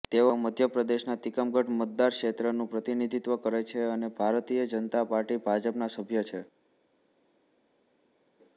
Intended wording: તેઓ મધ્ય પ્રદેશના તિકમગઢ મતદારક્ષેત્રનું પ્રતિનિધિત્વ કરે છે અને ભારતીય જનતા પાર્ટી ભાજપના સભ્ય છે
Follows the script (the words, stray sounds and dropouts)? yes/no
yes